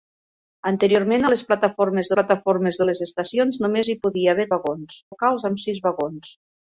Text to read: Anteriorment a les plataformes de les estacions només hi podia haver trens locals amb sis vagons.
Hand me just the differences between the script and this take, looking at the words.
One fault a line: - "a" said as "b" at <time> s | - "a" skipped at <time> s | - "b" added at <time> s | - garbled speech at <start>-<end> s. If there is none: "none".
- "plataformes" added at 2.2 s
- "trens" said as "vagons" at 4.6 s